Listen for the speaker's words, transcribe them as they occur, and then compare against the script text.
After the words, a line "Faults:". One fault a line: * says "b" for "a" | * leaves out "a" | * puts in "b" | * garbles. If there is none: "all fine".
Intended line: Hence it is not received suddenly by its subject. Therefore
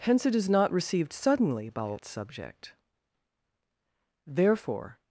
Hence it is not received suddenly by its subject. Therefore
Faults:
all fine